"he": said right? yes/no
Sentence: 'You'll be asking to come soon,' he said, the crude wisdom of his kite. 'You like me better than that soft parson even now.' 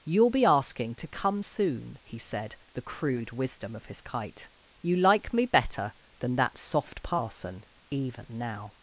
yes